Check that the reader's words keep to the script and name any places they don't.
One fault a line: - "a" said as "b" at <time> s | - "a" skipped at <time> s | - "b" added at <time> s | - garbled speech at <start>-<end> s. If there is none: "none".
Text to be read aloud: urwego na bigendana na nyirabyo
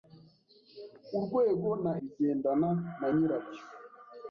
none